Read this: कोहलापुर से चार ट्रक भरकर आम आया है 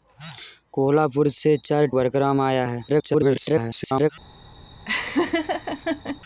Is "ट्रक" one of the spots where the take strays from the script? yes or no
yes